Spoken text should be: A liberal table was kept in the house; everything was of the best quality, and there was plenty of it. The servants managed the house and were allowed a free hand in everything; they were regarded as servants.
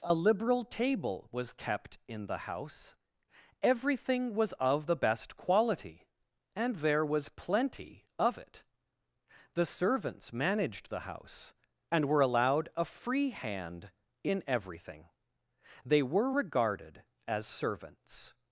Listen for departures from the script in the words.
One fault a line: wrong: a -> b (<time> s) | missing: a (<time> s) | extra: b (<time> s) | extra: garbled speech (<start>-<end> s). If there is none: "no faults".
no faults